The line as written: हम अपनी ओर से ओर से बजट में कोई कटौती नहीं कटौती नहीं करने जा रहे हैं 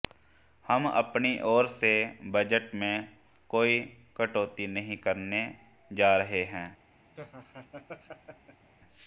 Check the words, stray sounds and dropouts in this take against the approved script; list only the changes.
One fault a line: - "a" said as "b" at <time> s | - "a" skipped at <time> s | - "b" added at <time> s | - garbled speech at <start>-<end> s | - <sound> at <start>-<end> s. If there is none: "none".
- "ओर से" skipped at 1.9 s
- "कटौती नहीं" skipped at 5.0 s
- laugh at 7.2-8.7 s